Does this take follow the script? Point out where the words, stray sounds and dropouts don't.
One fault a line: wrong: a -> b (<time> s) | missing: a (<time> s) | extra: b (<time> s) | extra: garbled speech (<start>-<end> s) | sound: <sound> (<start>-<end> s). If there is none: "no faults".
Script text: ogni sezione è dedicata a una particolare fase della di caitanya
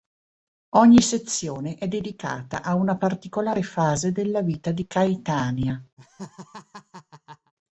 extra: vita (4.4 s)
sound: laugh (6.0-7.5 s)